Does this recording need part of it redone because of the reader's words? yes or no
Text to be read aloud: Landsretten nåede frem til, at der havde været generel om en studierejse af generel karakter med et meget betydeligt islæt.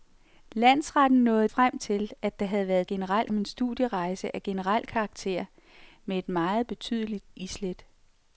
no